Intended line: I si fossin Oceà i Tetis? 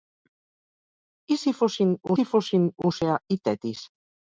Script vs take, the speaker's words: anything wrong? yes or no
yes